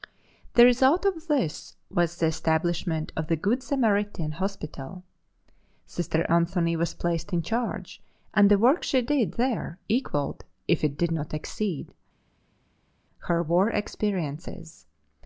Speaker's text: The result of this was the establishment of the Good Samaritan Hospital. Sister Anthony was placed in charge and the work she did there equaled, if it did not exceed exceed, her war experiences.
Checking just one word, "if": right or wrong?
right